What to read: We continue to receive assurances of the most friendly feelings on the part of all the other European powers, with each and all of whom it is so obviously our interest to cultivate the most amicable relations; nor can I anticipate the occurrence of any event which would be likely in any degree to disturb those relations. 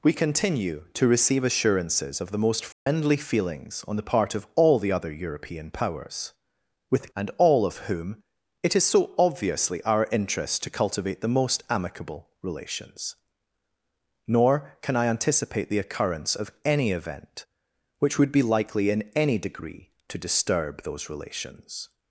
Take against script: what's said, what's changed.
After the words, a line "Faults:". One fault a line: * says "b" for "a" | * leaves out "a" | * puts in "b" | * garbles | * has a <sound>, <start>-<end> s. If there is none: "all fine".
We continue to receive assurances of the most friendly feelings on the part of all the other European powers, with and all of whom it is so obviously our interest to cultivate the most amicable relations; nor can I anticipate the occurrence of any event which would be likely in any degree to disturb those relations.
Faults:
* has a dropout, 2.7-2.9 s
* leaves out "each"